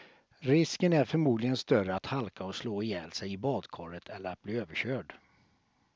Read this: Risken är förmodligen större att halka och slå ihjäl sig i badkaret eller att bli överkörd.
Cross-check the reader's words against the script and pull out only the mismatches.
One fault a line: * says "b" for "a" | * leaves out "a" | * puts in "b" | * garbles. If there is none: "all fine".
all fine